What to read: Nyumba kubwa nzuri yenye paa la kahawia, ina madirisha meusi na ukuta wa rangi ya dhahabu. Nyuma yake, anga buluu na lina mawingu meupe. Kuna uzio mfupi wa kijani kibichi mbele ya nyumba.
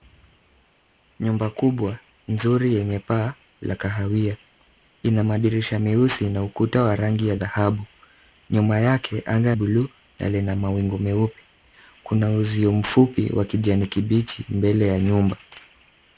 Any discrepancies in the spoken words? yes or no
no